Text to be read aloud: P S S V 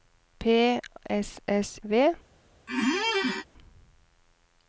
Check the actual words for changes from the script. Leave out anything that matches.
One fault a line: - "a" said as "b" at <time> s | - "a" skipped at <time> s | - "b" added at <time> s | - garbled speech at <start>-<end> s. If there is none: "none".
none